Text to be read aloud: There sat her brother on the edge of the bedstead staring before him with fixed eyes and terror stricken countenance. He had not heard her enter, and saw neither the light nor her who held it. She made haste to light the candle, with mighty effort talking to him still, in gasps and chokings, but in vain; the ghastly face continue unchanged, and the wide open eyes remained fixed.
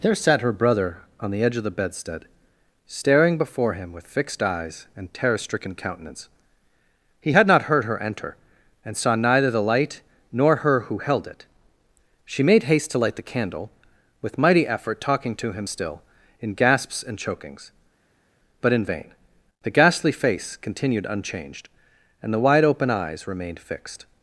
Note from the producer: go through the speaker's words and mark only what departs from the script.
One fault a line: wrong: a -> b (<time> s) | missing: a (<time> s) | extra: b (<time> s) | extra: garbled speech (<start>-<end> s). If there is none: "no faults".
wrong: continue -> continued (20.6 s)